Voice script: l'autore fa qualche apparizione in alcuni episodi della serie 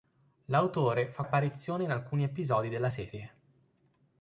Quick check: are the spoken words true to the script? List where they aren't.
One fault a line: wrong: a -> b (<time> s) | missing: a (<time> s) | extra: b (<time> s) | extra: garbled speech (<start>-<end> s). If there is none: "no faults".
missing: qualche (1.2 s)